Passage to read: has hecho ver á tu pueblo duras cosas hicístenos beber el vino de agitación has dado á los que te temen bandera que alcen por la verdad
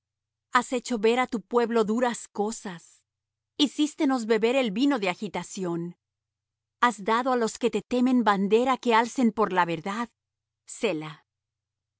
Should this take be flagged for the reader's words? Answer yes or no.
no